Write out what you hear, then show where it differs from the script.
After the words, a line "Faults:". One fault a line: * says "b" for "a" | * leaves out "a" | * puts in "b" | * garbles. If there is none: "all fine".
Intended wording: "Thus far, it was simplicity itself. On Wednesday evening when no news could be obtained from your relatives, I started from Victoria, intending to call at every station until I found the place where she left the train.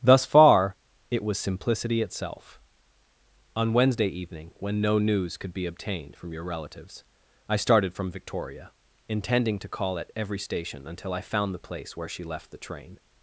"Thus far, it was simplicity itself. On Wednesday evening when no news could be obtained from your relatives, I started from Victoria, intending to call at every station until I found the place where she left the train.
Faults:
all fine